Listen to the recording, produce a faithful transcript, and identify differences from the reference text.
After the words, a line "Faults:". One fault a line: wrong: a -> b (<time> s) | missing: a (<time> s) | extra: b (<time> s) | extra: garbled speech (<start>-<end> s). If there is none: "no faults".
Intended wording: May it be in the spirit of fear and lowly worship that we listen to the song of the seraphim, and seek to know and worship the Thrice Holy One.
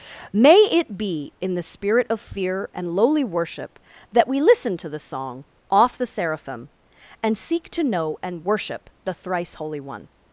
May it be in the spirit of fear and lowly worship that we listen to the song off the seraphim, and seek to know and worship the Thrice Holy One.
Faults:
wrong: of -> off (5.7 s)